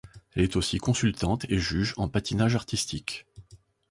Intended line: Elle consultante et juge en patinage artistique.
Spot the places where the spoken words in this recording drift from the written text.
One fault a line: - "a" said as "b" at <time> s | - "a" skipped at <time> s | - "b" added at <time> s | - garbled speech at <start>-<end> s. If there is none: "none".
- "est aussi" added at 0.4 s